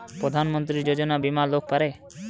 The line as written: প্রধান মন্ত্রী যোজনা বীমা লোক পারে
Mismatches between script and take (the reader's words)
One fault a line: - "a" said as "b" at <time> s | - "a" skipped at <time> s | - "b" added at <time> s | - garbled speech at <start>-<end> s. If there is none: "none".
none